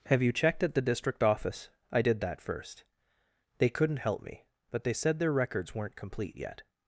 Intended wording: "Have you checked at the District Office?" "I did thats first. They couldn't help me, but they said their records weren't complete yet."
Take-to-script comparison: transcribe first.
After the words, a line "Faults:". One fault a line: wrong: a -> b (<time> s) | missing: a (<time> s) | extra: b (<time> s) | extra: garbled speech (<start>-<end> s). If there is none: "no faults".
"Have you checked at the District Office?" "I did that first. They couldn't help me, but they said their records weren't complete yet."
Faults:
wrong: thats -> that (2.2 s)